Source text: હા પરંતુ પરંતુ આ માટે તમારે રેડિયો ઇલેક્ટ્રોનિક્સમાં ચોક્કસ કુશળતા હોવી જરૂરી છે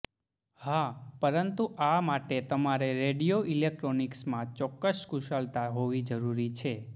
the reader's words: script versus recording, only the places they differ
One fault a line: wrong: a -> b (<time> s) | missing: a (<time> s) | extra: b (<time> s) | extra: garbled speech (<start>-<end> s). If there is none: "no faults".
missing: પરંતુ (1.6 s)